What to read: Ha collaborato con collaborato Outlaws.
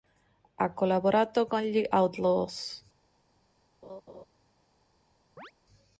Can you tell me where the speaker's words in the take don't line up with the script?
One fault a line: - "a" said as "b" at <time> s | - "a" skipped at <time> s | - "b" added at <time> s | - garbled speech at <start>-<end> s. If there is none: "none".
- "collaborato" said as "gli" at 1.6 s